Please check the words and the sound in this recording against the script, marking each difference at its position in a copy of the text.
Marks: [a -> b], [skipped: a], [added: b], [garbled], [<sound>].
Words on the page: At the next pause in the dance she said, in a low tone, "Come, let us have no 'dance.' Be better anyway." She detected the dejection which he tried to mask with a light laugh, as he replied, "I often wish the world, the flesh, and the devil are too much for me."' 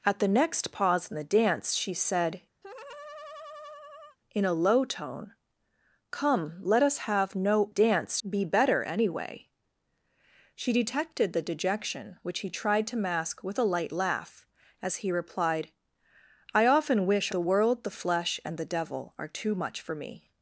At the next pause in the dance she said, [laugh] in a low tone, "Come, let us have no 'dance.' Be better anyway." She detected the dejection which he tried to mask with a light laugh, as he replied, "I often wish the world, the flesh, and the devil are too much for me."'